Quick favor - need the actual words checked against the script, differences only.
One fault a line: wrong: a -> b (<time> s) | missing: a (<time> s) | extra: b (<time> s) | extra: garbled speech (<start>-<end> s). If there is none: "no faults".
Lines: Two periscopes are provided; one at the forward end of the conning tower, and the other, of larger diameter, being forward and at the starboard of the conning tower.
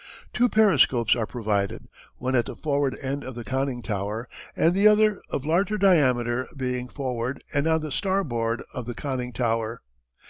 wrong: at -> on (7.7 s)